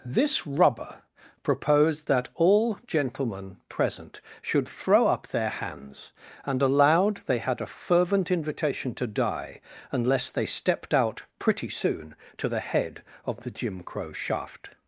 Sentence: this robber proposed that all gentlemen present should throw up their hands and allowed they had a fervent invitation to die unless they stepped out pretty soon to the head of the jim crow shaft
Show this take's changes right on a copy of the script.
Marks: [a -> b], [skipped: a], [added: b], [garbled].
this [robber -> rubber] proposed that all gentlemen present should throw up their hands and allowed they had a fervent invitation to die unless they stepped out pretty soon to the head of the jim crow shaft